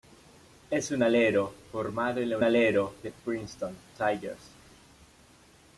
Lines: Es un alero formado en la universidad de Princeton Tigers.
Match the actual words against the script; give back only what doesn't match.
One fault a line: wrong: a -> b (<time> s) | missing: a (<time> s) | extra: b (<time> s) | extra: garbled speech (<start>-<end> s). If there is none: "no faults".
wrong: universidad -> alero (2.4 s)